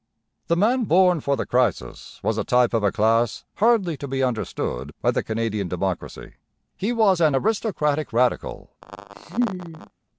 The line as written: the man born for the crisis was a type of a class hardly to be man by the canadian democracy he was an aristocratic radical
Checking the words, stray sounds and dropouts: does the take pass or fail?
fail